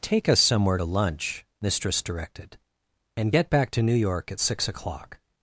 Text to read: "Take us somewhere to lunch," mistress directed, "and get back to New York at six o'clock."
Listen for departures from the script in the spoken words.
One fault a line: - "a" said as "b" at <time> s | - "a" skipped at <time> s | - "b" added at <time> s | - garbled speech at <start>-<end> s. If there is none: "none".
none